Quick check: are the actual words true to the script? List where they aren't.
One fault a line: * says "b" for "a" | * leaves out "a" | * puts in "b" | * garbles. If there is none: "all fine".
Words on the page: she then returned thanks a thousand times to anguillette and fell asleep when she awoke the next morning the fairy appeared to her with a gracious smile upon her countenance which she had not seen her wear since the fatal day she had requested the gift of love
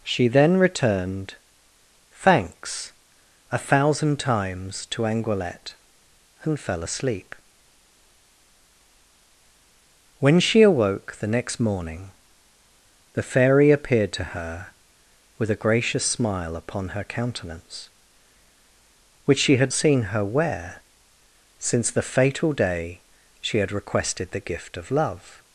* leaves out "not"